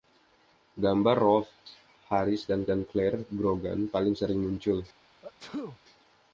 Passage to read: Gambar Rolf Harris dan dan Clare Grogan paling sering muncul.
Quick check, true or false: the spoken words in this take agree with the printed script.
true